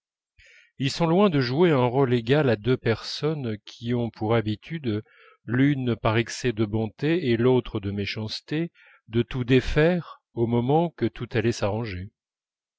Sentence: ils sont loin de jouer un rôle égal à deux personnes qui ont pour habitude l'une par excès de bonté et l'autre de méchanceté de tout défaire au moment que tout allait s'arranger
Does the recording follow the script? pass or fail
pass